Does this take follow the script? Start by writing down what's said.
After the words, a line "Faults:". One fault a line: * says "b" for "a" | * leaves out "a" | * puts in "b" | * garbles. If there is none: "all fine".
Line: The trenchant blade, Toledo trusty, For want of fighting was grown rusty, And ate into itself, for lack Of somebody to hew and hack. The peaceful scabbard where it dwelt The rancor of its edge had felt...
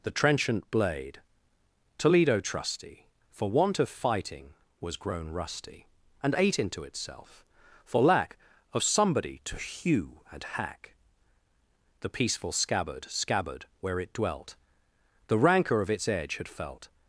The trenchant blade, Toledo trusty, For want of fighting was grown rusty, And ate into itself, for lack Of somebody to hew and hack. The peaceful scabbard scabbard where it dwelt The rancor of its edge had felt...
Faults:
* puts in "scabbard"